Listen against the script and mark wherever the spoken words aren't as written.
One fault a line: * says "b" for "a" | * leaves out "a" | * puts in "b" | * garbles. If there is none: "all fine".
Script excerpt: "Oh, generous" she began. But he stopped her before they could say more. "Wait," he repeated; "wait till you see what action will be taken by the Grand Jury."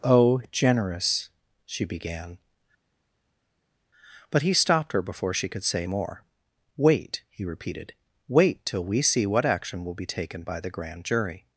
* says "she" for "they"
* says "we" for "you"